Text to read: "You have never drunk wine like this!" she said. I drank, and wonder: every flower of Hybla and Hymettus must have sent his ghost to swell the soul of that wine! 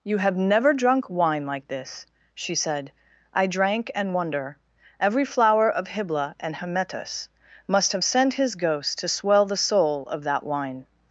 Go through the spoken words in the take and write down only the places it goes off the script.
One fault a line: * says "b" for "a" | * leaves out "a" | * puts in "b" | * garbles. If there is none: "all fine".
all fine